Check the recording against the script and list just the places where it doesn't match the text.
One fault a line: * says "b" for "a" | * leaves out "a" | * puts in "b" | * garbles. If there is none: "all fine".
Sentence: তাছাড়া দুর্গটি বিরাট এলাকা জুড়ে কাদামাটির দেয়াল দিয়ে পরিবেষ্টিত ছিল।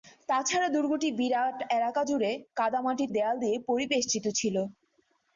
all fine